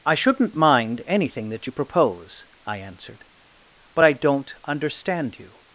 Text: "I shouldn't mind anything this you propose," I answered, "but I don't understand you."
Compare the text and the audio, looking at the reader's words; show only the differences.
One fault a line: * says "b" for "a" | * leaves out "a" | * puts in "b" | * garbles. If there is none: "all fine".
* says "that" for "this"